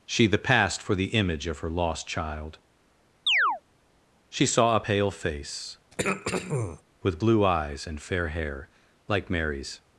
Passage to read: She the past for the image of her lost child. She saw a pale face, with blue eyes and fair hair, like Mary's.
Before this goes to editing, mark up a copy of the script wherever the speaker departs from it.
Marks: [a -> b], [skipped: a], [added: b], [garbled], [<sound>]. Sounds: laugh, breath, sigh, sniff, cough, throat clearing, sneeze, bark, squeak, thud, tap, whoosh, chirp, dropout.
She the past for the image of her lost child. [chirp] She saw a pale face, [throat clearing] with blue eyes and fair hair, like Mary's.